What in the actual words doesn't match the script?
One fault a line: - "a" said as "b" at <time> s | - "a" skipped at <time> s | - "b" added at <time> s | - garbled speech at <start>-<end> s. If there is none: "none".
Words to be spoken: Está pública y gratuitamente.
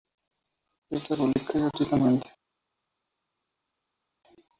none